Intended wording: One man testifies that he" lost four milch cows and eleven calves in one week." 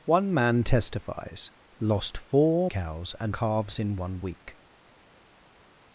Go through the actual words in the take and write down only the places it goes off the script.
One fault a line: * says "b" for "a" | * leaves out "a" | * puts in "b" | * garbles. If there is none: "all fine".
* leaves out "that he"
* leaves out "milch"
* leaves out "eleven"